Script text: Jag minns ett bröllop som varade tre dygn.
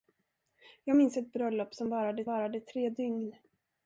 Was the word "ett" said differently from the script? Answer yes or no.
no